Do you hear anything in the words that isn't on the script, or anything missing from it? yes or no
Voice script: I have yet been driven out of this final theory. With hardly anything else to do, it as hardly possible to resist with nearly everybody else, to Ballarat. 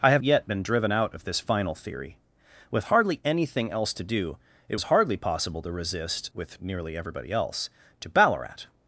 no